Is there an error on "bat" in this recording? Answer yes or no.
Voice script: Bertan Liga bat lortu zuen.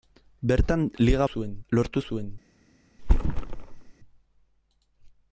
yes